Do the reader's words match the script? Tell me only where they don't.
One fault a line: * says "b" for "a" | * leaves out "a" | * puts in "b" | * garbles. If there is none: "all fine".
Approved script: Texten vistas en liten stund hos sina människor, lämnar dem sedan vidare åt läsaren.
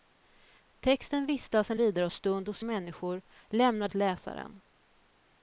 * says "vidare" for "liten"
* leaves out "sina"
* leaves out "dem sedan vidare"